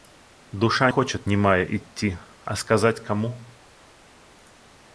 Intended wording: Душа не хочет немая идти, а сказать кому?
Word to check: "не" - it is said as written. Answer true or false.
false